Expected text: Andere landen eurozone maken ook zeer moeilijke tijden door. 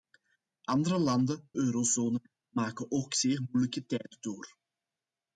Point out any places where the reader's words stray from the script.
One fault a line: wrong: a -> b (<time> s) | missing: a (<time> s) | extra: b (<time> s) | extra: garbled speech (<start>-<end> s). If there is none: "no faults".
no faults